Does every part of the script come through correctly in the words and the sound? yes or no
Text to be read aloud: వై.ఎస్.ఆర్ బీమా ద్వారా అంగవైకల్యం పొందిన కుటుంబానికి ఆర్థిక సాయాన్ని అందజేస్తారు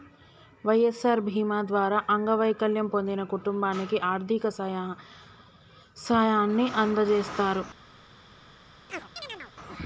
no